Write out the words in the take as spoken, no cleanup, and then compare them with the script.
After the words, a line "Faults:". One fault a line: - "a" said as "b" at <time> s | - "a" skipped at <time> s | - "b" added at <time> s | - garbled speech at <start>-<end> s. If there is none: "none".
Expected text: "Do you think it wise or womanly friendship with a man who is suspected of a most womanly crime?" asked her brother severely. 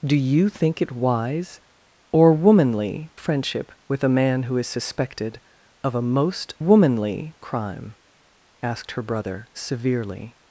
"Do you think it wise or womanly friendship with a man who is suspected of a most womanly crime?" asked her brother severely.
Faults:
none